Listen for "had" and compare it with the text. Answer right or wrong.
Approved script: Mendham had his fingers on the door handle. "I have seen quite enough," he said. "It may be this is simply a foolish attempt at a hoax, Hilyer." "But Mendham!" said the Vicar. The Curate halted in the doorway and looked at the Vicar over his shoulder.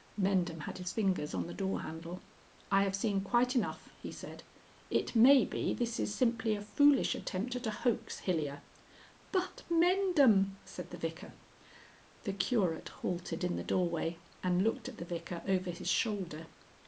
right